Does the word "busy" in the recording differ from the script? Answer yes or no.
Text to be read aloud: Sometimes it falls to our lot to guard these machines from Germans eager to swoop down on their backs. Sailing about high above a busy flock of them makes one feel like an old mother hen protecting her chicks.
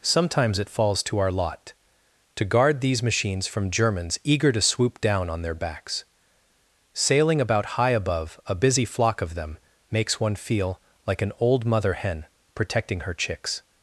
no